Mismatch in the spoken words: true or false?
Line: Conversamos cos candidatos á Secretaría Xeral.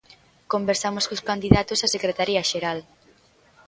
false